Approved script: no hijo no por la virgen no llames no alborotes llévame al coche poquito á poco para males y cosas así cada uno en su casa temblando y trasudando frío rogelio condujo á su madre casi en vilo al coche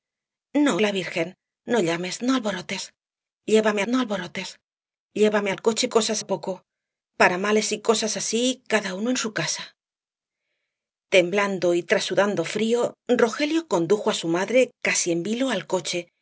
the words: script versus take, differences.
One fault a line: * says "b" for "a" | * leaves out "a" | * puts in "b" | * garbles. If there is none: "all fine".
* leaves out "hijo no por"
* puts in "no alborotes llévame"
* says "cosas" for "poquito"